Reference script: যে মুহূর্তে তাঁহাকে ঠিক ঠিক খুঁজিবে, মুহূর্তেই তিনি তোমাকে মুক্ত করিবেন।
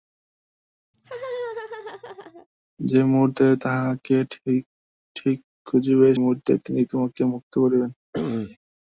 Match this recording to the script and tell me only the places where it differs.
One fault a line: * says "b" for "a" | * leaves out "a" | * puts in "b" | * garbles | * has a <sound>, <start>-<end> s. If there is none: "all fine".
* has a laugh, 0.9-2.5 s
* has a sneeze, 8.1-8.6 s